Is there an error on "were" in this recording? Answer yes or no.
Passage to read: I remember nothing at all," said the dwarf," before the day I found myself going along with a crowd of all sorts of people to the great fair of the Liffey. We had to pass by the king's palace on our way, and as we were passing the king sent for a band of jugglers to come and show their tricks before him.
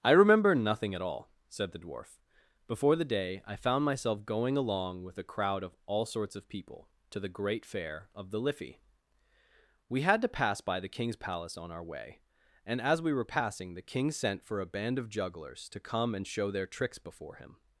no